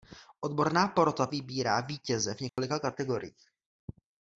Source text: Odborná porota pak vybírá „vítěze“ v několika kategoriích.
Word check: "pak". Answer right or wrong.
wrong